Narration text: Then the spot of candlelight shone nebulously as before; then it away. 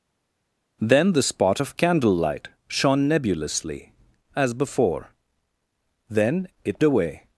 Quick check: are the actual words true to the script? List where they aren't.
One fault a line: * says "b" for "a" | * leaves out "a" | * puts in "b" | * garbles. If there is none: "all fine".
all fine